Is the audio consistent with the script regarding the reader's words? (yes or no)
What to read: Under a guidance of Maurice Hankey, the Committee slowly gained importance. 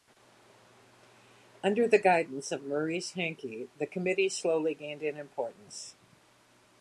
no